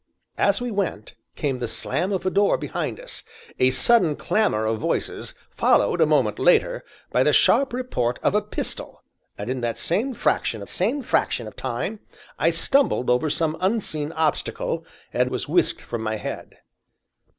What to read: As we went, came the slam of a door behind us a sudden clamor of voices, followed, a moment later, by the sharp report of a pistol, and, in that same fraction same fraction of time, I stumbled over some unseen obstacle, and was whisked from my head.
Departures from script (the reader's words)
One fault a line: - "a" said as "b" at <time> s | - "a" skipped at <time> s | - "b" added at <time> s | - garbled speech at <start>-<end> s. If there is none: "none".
none